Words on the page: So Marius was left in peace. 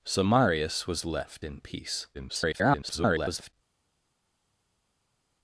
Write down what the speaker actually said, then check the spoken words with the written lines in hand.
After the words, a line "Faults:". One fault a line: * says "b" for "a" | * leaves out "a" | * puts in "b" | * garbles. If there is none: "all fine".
So Marius was left in peace. [garbled]
Faults:
* garbles